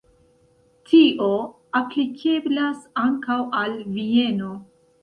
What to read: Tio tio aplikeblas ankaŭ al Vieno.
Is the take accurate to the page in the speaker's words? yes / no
no